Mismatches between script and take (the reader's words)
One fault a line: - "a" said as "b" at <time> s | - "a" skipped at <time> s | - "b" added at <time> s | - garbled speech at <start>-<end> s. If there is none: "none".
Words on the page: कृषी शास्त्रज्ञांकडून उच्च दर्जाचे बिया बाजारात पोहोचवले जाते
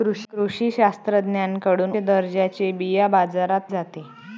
- "उच्च" skipped at 1.9 s
- "पोहोचवले" skipped at 3.6 s